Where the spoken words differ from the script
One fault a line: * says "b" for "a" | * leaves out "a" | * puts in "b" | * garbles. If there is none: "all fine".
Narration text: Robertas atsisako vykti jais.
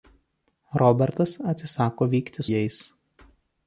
all fine